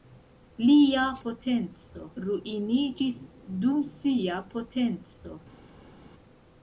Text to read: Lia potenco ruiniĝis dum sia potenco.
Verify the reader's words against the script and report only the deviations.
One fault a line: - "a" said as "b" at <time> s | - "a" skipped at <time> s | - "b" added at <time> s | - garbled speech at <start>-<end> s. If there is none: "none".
none